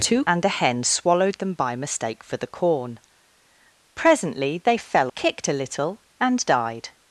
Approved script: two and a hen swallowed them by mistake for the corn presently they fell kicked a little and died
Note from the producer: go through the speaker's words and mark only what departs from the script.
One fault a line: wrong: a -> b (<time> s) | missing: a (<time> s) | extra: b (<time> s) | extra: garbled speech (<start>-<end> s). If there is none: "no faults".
no faults